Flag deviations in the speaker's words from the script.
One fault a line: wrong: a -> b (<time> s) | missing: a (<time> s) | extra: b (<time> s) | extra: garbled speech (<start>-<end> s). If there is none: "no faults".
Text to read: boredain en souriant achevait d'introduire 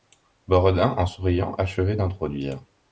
no faults